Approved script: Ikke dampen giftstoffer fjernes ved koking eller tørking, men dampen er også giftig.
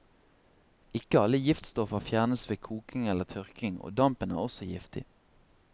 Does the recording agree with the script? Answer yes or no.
no